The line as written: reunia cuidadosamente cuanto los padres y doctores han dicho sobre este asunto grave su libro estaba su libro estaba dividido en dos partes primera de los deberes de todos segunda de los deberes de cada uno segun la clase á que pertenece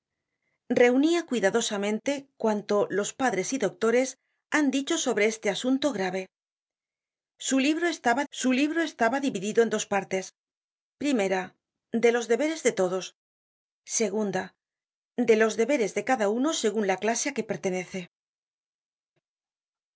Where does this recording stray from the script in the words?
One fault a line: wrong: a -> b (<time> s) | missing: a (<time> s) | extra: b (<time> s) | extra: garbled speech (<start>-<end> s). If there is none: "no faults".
no faults